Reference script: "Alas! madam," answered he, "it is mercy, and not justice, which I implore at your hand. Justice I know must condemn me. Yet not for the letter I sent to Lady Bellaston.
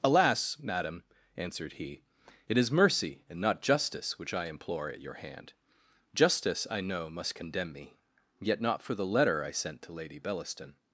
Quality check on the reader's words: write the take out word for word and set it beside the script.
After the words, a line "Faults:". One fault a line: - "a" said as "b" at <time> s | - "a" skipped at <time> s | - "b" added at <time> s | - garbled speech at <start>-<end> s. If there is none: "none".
"Alas! madam," answered he, "it is mercy, and not justice, which I implore at your hand. Justice I know must condemn me. Yet not for the letter I sent to Lady Bellaston.
Faults:
none